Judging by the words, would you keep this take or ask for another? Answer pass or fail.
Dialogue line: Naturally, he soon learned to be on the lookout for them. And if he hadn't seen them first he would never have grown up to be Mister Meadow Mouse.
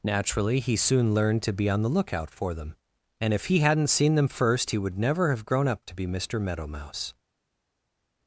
pass